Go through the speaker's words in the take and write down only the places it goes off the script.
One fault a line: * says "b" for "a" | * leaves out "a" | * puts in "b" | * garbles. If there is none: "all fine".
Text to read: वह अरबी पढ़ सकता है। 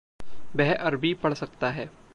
all fine